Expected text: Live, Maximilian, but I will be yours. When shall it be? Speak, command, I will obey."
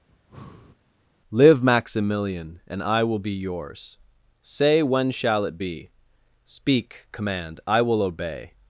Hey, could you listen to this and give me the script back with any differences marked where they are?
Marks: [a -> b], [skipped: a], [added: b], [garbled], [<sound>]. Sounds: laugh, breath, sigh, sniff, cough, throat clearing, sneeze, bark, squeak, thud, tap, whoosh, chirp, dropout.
[breath] Live, Maximilian, [but -> and] I will be yours. [added: Say] When shall it be? Speak, command, I will obey."